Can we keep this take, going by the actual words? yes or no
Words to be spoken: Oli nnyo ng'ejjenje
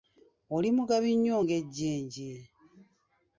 no